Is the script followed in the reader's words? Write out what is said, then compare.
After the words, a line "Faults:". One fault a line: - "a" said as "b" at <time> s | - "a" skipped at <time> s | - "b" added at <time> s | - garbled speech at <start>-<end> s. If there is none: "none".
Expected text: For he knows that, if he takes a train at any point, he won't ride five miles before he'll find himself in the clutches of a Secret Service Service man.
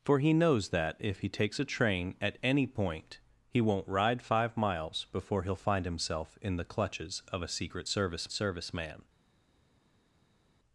For he knows that, if he takes a train at any point, he won't ride five miles before he'll find himself in the clutches of a Secret Service Service man.
Faults:
none